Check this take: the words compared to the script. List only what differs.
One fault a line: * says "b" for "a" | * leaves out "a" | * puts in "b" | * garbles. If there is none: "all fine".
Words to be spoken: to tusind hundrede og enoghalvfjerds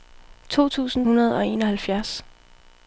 all fine